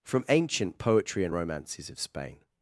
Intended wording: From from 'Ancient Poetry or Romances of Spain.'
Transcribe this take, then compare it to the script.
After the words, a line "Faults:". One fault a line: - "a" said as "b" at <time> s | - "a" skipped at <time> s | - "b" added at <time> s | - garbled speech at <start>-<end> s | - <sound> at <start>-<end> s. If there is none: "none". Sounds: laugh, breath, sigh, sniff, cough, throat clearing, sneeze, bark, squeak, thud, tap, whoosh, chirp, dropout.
From 'Ancient Poetry and Romances of Spain.'
Faults:
- "from" skipped at 0.2 s
- "or" said as "and" at 1.2 s